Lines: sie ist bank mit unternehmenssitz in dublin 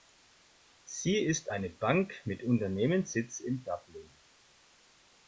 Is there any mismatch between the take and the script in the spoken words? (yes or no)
yes